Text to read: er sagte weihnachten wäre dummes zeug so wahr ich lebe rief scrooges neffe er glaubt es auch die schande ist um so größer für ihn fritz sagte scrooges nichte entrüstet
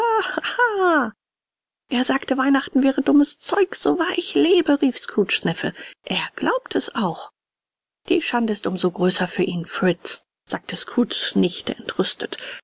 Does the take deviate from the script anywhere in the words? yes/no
no